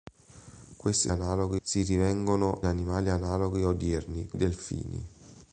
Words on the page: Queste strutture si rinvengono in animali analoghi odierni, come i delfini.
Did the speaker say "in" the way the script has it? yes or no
no